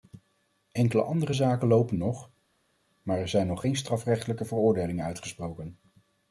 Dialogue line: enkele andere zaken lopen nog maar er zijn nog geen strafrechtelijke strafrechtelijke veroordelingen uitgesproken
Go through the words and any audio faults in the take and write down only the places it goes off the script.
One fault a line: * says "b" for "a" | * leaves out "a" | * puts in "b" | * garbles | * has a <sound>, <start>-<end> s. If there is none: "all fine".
* leaves out "strafrechtelijke"